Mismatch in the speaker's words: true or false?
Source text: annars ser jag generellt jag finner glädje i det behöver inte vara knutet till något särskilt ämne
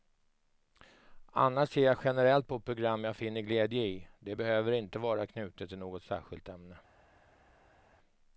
true